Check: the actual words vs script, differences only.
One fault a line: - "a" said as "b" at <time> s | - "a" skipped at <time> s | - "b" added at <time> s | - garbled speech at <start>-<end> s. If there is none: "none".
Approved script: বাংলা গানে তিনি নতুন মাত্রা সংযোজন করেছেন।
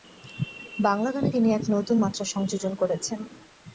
- "এক" added at 1.5 s